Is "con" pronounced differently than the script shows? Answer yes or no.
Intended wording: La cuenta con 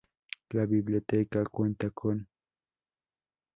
no